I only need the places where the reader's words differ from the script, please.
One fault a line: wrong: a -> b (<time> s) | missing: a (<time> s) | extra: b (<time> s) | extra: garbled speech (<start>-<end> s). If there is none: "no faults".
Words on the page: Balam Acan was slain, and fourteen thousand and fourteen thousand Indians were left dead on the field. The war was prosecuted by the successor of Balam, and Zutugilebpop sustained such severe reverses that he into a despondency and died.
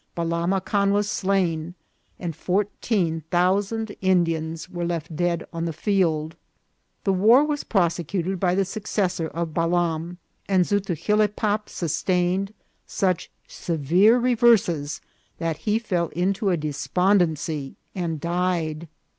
missing: and fourteen thousand (4.0 s)
extra: fell (15.8 s)